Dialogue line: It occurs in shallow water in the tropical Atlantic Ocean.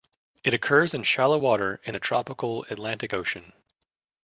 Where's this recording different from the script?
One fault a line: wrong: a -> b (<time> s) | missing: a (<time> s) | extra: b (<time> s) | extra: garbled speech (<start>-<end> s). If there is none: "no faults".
no faults